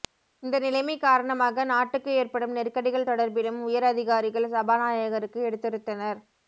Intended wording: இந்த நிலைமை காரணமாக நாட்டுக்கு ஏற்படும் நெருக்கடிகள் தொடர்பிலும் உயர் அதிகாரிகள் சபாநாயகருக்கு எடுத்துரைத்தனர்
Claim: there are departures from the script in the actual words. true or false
false